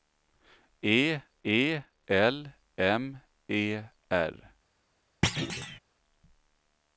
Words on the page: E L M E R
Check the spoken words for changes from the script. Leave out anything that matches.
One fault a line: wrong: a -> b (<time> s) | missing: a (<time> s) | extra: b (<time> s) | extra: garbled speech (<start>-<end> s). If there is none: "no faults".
extra: e (1.4 s)